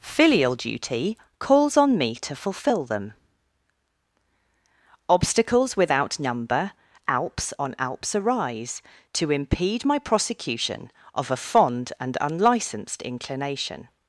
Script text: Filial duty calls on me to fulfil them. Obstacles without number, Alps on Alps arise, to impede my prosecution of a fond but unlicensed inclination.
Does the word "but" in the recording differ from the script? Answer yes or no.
yes